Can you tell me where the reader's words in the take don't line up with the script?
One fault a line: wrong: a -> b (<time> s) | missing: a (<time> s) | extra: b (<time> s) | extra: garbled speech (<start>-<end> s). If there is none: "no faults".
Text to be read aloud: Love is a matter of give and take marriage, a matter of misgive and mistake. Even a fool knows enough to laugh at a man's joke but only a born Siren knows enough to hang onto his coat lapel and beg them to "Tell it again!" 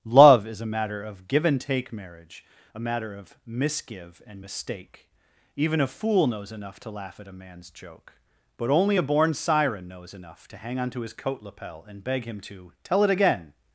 wrong: them -> him (12.2 s)